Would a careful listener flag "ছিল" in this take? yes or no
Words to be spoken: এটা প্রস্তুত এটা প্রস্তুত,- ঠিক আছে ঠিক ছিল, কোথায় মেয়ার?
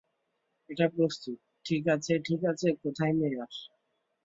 yes